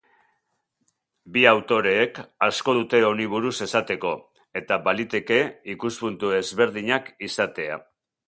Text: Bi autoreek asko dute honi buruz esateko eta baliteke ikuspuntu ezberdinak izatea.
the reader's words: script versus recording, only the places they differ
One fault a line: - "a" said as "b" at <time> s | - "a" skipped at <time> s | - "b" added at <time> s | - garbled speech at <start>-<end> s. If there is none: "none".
none